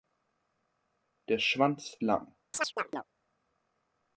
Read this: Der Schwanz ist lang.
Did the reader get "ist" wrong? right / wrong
wrong